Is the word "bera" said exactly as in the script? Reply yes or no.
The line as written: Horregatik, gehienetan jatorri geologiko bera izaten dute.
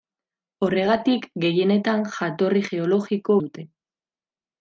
no